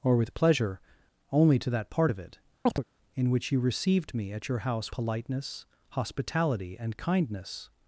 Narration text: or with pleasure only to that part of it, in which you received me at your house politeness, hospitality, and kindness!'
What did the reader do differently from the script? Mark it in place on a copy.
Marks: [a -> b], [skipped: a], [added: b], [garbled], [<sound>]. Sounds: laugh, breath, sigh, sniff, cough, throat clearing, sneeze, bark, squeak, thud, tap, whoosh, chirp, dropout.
or with pleasure only to that part of it, [chirp] in which you received me at your house politeness, hospitality, and kindness!'